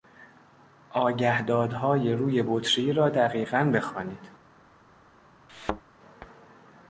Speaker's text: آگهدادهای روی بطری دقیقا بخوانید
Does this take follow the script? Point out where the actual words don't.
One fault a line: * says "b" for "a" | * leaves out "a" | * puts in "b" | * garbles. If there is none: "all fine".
* puts in "را"